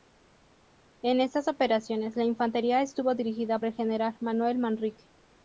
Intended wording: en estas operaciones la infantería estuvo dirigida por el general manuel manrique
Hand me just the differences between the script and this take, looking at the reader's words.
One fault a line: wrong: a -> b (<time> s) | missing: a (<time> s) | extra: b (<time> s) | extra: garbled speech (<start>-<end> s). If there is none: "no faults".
missing: por (3.6 s)